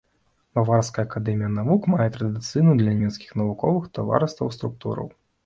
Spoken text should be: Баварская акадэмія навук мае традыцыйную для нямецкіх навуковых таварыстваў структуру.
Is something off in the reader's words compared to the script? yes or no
no